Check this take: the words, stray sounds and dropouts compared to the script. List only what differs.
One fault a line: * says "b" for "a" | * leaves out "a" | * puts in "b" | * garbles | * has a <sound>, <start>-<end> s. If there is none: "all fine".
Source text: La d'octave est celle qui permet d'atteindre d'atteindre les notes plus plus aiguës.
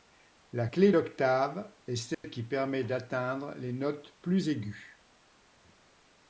* puts in "clé"
* has a dropout, 2.1-2.2 s
* leaves out "d'atteindre"
* leaves out "plus"